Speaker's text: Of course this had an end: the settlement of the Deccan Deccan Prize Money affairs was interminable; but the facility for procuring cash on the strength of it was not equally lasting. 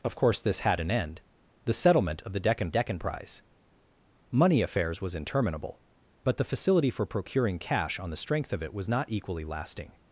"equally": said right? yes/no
yes